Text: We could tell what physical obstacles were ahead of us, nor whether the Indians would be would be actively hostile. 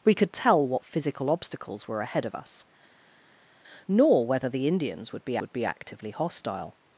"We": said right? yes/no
yes